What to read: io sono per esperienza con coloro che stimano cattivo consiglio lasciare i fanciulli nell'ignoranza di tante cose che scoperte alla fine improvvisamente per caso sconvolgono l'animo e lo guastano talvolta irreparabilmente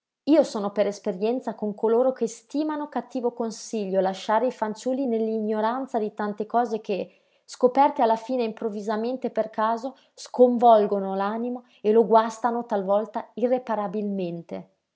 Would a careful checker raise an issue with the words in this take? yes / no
no